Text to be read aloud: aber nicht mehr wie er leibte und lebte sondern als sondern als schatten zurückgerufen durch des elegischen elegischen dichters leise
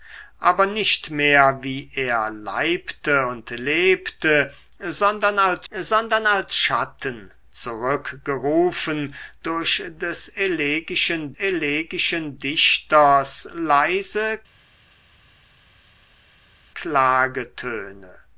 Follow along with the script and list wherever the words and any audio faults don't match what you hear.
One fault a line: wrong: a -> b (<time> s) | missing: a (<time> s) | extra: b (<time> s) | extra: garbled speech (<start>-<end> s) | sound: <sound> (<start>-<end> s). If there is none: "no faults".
no faults